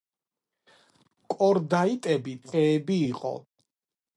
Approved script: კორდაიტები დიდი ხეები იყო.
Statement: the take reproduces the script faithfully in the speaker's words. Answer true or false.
false